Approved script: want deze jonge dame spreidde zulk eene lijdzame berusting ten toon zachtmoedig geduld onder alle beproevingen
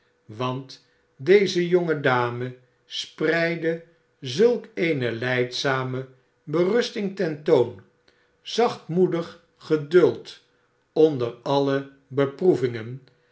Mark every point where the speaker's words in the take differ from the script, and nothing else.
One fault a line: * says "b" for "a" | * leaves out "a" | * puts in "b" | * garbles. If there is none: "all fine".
all fine